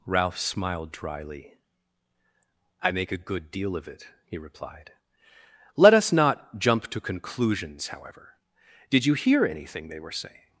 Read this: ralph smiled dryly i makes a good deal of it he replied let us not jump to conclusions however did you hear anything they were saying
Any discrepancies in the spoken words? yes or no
yes